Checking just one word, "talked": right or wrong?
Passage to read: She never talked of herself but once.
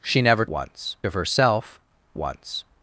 wrong